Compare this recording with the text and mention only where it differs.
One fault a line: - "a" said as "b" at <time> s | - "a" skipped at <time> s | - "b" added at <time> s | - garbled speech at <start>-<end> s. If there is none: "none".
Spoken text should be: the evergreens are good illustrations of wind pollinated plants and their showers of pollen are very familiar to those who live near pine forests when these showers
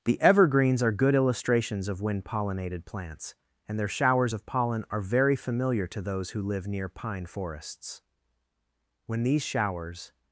none